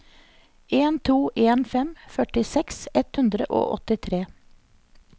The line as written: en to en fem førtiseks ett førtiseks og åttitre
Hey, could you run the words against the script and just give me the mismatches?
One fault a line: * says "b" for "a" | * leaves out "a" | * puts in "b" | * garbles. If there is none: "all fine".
* says "hundre" for "førtiseks"